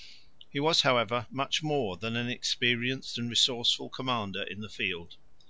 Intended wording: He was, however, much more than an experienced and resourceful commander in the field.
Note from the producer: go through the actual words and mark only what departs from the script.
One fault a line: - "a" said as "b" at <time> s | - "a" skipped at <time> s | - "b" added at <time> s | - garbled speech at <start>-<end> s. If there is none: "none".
none